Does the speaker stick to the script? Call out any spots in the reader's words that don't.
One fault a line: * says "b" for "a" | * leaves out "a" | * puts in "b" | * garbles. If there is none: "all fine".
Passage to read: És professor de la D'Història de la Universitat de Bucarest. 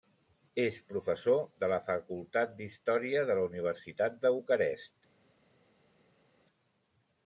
* puts in "Facultat"